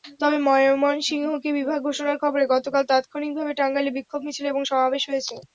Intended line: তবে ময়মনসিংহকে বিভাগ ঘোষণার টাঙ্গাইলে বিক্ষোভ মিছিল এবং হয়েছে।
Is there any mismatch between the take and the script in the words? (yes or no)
yes